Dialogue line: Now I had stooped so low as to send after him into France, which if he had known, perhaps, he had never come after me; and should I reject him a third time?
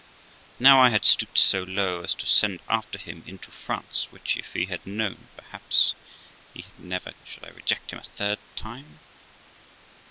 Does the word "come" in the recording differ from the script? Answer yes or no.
yes